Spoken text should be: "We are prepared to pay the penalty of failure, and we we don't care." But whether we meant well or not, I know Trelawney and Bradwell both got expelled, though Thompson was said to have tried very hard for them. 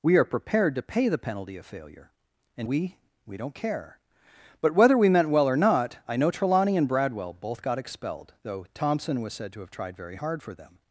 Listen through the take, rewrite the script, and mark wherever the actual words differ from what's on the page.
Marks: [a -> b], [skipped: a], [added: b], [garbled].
"We are prepared to pay the penalty of failure, and we we don't care." But whether we meant well or not, I know Trelawney and Bradwell both got expelled, though Thompson was said to have tried very hard for them.